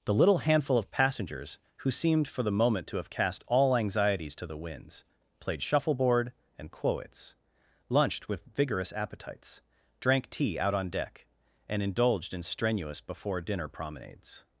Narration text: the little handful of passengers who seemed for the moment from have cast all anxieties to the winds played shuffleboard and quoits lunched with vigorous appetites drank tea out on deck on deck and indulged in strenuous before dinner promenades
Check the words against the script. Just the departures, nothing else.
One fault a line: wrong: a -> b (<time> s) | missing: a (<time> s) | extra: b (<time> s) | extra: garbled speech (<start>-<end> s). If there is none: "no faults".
wrong: from -> to (2.9 s)
missing: on deck (11.3 s)